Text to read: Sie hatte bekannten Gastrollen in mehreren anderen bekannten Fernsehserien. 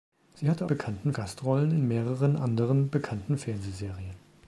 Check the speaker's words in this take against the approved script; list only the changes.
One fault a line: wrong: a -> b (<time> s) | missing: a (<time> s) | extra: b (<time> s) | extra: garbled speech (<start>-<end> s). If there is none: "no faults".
no faults